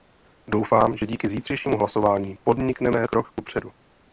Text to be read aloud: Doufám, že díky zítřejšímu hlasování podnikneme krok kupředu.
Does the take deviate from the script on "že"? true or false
false